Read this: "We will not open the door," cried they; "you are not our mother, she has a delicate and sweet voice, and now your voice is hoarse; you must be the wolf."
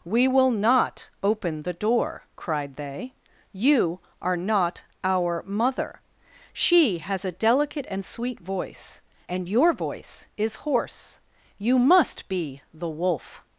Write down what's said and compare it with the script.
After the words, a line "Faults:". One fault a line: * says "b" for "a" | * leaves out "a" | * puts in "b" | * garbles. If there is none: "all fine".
"We will not open the door," cried they; "you are not our mother, she has a delicate and sweet voice, and your voice is hoarse; you must be the wolf."
Faults:
* leaves out "now"